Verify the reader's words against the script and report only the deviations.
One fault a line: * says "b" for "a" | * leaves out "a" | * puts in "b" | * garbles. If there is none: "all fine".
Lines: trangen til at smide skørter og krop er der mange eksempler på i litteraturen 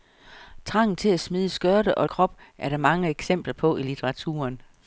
all fine